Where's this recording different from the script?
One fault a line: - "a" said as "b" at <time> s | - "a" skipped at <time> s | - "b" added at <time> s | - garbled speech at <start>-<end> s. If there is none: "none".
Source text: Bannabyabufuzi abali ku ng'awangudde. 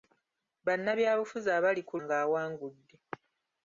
none